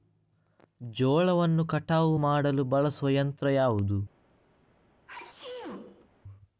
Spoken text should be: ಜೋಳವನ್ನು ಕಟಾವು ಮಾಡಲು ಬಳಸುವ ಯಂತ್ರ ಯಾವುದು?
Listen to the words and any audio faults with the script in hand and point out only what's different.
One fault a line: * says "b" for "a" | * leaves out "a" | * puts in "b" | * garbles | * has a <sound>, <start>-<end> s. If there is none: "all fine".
* has a sneeze, 5.1-6.1 s